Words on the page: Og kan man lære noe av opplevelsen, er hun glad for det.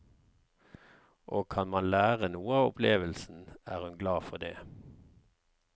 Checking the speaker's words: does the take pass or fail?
pass